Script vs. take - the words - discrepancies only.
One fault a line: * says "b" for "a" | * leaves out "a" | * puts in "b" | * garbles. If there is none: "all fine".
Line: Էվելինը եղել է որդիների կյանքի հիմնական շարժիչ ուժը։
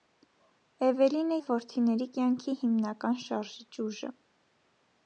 * leaves out "եղել"